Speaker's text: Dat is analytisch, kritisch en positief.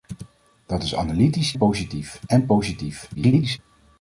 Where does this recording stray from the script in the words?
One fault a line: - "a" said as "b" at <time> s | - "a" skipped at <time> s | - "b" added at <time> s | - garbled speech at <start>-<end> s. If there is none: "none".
- "kritisch" said as "positief" at 1.6 s
- garbled speech at 3.1-3.6 s